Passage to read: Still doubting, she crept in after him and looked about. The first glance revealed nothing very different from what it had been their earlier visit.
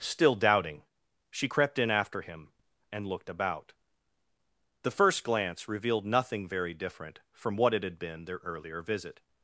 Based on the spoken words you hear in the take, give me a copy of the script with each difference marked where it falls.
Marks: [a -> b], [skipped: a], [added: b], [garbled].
Still doubting, she crept in after him and looked about. The first glance revealed nothing very different from what it had been their earlier visit.